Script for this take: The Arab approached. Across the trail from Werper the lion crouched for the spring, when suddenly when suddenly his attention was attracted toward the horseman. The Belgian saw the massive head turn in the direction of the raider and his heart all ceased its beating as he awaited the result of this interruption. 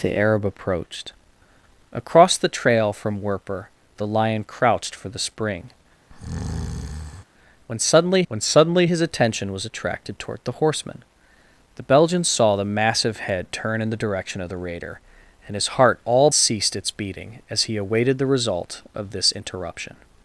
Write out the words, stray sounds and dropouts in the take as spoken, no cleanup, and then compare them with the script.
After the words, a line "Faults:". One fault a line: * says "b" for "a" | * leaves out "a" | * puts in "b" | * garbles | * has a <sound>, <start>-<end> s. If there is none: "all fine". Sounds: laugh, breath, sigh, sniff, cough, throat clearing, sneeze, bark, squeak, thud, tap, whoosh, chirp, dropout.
The Arab approached. Across the trail from Werper the lion crouched for the spring, when suddenly when suddenly his attention was attracted toward the horseman. The Belgian saw the massive head turn in the direction of the raider and his heart all ceased its beating as he awaited the result of this interruption.
Faults:
* has a breath, 6.1-7.2 s